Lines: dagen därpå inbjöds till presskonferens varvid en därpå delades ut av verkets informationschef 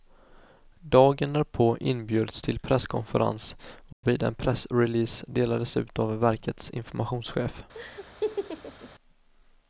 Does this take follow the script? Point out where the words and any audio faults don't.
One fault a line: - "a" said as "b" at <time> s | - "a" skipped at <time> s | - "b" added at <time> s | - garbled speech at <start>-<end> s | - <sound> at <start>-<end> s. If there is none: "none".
- dropout at 3.9-4.0 s
- "därpå" said as "pressrelease" at 4.3 s
- laugh at 7.7-8.9 s